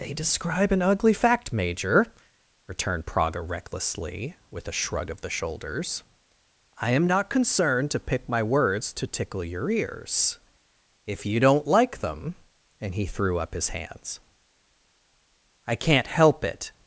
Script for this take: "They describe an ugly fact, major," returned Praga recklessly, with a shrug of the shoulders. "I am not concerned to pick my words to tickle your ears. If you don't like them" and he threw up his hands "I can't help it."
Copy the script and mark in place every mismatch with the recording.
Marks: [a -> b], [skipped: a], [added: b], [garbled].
"They describe an ugly fact, major," returned Praga recklessly, with a shrug of the shoulders. "I am not concerned to pick my words to tickle your ears. If you don't like them" and he threw up his hands "I can't help it."